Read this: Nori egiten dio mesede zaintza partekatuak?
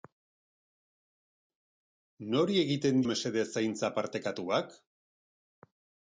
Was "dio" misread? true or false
true